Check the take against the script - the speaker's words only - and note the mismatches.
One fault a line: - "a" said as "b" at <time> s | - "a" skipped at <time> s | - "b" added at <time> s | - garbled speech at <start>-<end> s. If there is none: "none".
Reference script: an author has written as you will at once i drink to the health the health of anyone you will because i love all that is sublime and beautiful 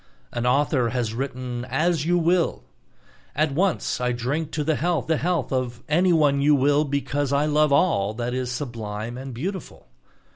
none